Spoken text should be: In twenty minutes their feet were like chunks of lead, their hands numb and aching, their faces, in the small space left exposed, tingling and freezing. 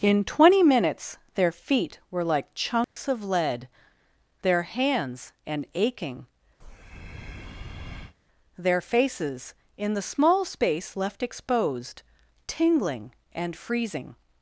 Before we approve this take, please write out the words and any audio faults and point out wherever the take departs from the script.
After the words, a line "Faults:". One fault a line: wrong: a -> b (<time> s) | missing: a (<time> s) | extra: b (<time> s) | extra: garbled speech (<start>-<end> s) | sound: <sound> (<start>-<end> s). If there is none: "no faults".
In twenty minutes their feet were like chunks of lead, their hands and aching, their faces, in the small space left exposed, tingling and freezing.
Faults:
sound: dropout (2.8-3.0 s)
missing: numb (5.3 s)
sound: breath (6.6-8.2 s)